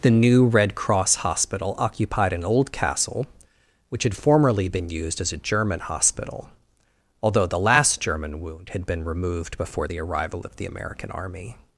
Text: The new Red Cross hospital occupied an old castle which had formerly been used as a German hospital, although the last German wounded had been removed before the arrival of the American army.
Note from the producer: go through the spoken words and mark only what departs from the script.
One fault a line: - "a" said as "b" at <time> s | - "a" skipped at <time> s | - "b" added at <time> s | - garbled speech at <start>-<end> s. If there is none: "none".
- "wounded" said as "wound" at 8.4 s